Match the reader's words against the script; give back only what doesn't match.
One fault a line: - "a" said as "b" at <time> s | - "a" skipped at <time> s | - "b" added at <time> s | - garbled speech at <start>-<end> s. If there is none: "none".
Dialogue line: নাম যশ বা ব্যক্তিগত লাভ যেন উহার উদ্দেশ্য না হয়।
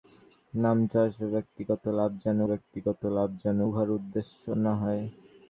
- "ব্যক্তিগত লাভ যেন" added at 2.5 s